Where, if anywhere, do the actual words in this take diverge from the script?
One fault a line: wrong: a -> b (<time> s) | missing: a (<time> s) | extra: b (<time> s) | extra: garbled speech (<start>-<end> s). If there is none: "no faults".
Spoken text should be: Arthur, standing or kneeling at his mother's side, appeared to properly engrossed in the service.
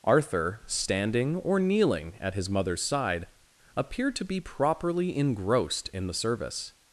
extra: be (4.2 s)